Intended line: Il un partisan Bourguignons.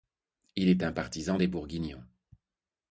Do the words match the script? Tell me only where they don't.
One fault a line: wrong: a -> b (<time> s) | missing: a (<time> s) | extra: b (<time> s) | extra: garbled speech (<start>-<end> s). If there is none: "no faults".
extra: est (0.7 s)
extra: des (1.4 s)